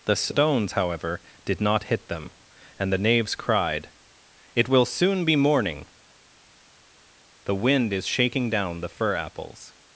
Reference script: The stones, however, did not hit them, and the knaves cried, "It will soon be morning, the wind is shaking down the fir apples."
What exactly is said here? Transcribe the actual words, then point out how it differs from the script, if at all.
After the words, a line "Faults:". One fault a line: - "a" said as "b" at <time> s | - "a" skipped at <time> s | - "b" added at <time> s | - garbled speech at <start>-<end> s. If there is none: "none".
The stones, however, did not hit them, and the knaves cried, "It will soon be morning, the wind is shaking down the fir apples."
Faults:
none